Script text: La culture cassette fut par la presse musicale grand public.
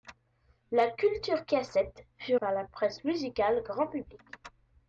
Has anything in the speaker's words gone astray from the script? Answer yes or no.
no